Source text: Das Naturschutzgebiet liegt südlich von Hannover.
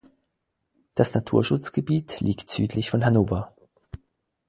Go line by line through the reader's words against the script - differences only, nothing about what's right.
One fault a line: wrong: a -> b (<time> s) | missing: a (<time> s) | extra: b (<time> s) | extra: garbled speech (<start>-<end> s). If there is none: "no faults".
no faults